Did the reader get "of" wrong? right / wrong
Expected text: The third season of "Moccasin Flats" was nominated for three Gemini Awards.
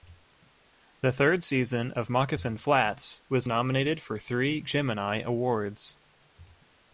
right